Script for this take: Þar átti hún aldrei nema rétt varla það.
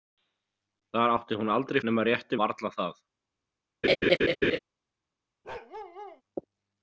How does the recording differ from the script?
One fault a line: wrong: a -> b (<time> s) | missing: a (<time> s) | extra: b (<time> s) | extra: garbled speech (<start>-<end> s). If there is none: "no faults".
no faults